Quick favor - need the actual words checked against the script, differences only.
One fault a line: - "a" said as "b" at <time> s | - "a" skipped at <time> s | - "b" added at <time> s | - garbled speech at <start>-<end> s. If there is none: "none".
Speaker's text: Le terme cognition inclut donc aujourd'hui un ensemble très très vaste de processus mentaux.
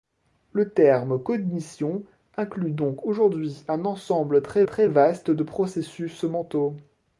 none